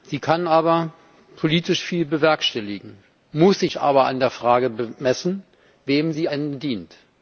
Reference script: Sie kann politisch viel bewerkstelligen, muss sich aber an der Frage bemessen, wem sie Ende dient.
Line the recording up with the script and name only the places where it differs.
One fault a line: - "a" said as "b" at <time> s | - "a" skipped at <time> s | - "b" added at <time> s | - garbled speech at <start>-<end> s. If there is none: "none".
none